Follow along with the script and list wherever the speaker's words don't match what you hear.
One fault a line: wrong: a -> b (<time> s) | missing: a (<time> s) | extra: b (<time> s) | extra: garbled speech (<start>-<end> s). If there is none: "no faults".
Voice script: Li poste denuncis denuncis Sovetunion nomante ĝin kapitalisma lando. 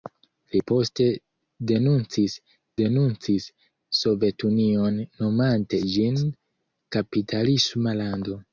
no faults